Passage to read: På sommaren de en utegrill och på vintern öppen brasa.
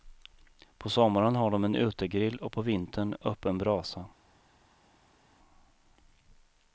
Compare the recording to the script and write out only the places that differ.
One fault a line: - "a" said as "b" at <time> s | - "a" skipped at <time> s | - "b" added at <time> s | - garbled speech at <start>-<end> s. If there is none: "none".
- "har" added at 1.4 s